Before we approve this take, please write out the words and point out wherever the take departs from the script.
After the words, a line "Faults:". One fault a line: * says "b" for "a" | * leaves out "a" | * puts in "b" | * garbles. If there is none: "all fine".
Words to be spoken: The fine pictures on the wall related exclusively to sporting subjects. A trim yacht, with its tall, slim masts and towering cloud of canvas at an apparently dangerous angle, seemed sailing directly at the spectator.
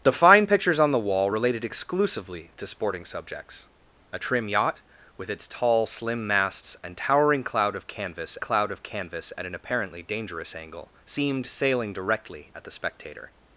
The fine pictures on the wall related exclusively to sporting subjects. A trim yacht, with its tall, slim masts and towering cloud of canvas cloud of canvas at an apparently dangerous angle, seemed sailing directly at the spectator.
Faults:
* puts in "cloud of canvas"